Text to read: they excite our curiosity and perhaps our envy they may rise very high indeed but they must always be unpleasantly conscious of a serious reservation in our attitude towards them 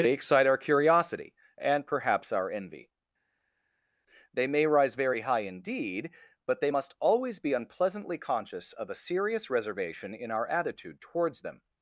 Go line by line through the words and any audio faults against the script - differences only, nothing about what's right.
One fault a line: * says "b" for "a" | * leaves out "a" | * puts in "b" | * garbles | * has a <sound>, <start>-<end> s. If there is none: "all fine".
all fine